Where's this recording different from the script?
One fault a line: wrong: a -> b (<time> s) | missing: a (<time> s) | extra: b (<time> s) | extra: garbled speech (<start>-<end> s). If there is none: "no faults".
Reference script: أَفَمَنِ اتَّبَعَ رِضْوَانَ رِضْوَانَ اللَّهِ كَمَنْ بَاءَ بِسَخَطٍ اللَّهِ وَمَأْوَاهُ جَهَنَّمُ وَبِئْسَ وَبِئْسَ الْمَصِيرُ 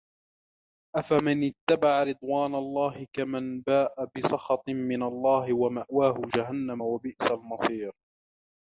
missing: رِضْوَانَ (2.5 s)
extra: مِنَ (4.7 s)
missing: وَبِئْسَ (7.3 s)